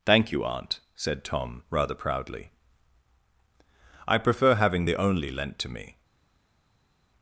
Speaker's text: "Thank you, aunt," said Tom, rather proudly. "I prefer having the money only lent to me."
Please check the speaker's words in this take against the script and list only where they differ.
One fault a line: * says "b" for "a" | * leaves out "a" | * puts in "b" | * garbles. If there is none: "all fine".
* leaves out "money"